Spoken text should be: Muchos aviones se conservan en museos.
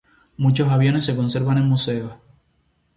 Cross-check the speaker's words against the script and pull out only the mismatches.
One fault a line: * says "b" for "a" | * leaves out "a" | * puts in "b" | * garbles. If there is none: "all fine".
all fine